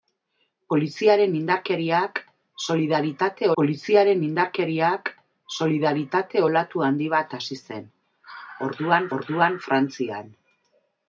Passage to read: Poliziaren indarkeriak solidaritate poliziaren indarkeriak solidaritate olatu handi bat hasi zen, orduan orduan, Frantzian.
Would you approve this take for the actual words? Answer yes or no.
yes